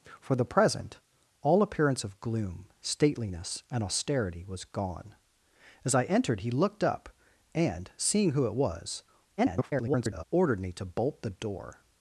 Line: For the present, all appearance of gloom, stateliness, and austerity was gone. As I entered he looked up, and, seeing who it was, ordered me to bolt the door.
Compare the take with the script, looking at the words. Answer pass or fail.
fail